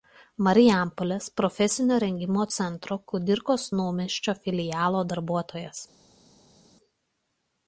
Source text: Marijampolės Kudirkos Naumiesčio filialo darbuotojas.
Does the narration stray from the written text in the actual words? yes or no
yes